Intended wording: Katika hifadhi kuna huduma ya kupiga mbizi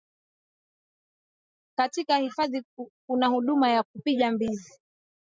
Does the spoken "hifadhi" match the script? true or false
true